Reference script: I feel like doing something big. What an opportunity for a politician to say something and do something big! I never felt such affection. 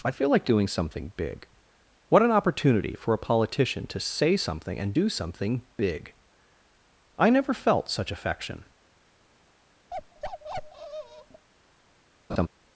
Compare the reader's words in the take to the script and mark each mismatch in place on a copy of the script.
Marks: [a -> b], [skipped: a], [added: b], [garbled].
I feel like doing something big. What an opportunity for a politician to say something and do something big! I never felt such affection.